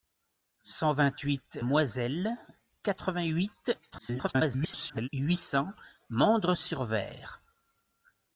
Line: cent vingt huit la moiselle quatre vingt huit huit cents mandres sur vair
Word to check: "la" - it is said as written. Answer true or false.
false